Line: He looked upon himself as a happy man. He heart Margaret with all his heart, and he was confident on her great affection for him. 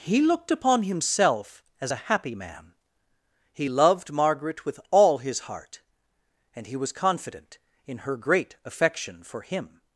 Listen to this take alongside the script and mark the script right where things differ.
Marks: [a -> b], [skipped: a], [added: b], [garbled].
He looked upon himself as a happy man. He [heart -> loved] Margaret with all his heart, and he was confident [on -> in] her great affection for him.